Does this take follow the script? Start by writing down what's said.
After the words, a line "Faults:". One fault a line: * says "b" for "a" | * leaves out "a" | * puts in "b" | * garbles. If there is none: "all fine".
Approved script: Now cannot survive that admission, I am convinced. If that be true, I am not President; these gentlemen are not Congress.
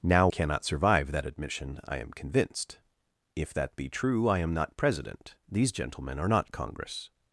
Now cannot survive that admission, I am convinced. If that be true, I am not President; these gentlemen are not Congress.
Faults:
all fine